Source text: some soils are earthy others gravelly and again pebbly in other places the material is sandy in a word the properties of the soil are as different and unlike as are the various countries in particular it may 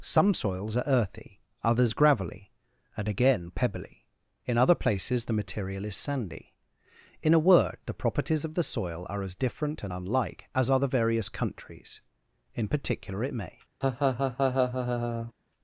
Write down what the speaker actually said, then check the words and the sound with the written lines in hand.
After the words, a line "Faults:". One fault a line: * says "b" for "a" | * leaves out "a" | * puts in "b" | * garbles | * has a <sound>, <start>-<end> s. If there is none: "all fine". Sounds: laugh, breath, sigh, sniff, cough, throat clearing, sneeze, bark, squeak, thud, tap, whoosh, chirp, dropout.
some soils are earthy others gravelly and again pebbly in other places the material is sandy in a word the properties of the soil are as different and unlike as are the various countries in particular it may
Faults:
* has a laugh, 13.8-15.3 s